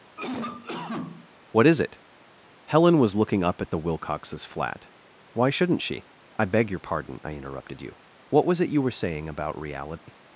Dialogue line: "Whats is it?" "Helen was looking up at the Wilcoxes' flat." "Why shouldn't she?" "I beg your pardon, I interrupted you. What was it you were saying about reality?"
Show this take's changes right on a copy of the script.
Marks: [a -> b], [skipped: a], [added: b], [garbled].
["Whats -> What] is it?" "Helen was looking up at the Wilcoxes' flat." "Why shouldn't she?" "I beg your pardon, I interrupted you. What was it you were saying about reality?"